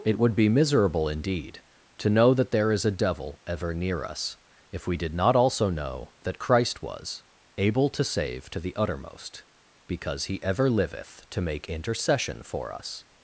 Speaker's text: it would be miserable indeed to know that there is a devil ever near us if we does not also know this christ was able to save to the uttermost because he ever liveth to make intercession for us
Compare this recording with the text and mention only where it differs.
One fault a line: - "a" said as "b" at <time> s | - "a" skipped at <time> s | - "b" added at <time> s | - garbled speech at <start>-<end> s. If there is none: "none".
- "does" said as "did" at 5.0 s
- "this" said as "that" at 6.2 s